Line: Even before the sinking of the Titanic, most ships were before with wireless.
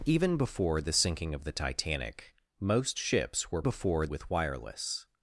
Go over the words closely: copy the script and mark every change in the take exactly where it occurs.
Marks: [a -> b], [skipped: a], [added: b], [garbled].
Even before the sinking of the Titanic, most ships were before with wireless.